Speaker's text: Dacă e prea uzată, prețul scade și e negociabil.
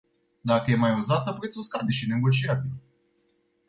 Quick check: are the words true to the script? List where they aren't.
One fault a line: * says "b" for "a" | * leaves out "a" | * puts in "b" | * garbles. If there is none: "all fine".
* says "mai" for "prea"